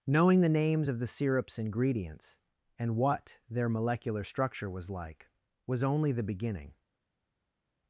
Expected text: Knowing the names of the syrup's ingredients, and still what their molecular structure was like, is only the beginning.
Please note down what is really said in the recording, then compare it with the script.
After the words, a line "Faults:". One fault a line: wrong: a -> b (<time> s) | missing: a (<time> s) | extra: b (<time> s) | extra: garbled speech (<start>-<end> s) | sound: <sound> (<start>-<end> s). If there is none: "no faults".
Knowing the names of the syrup's ingredients, and what their molecular structure was like, was only the beginning.
Faults:
missing: still (3.0 s)
wrong: is -> was (5.7 s)